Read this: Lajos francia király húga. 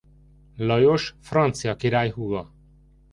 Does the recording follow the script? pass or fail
pass